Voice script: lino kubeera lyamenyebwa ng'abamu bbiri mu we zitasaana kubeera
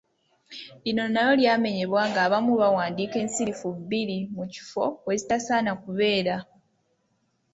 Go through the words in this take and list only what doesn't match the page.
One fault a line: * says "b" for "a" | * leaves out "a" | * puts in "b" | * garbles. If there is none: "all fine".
* says "nalyo" for "kubeera"
* puts in "bawandiika ensirifu"
* puts in "kifo"